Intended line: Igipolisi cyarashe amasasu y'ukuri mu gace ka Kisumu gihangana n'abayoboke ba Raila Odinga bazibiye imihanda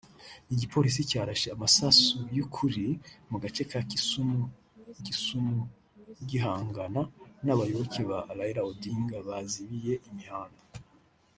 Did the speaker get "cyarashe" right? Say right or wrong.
right